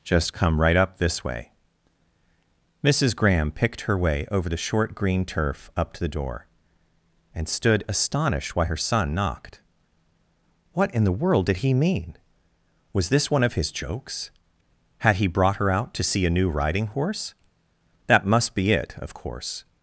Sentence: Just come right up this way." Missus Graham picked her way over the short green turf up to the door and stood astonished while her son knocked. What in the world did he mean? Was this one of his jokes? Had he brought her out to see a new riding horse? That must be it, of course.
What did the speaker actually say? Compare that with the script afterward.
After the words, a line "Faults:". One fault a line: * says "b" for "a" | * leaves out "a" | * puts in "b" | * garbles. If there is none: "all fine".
Just come right up this way." Missus Graham picked her way over the short green turf up to the door and stood astonished why her son knocked. What in the world did he mean? Was this one of his jokes? Had he brought her out to see a new riding horse? That must be it, of course.
Faults:
* says "why" for "while"